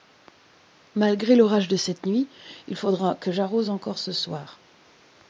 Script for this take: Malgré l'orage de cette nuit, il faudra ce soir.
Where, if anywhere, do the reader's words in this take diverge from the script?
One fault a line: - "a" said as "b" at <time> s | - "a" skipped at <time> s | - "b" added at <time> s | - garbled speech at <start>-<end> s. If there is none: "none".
- "que j'arrose encore" added at 3.2 s